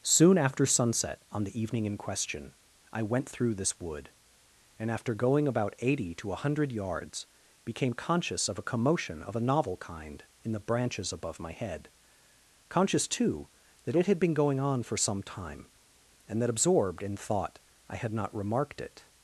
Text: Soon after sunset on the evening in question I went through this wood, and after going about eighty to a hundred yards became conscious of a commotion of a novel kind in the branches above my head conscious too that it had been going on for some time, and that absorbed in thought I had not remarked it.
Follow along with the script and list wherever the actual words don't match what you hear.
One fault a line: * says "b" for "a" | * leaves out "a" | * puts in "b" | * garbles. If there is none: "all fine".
all fine